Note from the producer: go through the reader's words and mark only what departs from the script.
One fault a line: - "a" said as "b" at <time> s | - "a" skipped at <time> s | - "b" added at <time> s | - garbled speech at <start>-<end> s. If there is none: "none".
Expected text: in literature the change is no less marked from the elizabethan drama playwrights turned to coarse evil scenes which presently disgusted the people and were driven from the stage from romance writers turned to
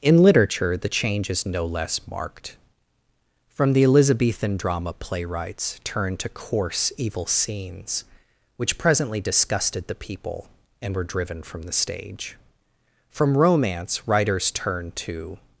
none